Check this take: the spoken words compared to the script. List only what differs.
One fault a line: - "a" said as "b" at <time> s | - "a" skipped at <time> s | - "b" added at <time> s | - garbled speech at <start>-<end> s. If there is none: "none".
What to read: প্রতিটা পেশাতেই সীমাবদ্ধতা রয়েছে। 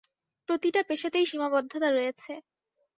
none